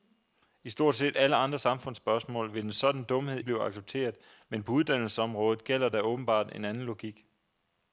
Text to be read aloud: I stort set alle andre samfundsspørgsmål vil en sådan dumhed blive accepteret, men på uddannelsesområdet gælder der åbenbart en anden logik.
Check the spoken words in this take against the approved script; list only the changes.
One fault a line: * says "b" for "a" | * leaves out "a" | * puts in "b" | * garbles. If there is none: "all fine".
all fine